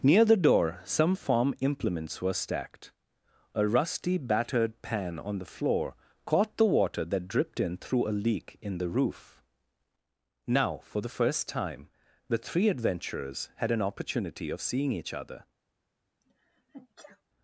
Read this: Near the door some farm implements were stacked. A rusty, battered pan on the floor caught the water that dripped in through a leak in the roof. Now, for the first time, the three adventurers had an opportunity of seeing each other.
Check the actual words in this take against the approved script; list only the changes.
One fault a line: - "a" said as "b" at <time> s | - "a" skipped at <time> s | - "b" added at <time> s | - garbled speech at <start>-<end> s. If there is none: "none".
none